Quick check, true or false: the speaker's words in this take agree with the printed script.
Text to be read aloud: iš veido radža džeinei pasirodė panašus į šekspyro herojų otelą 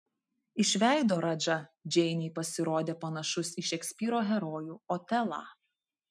true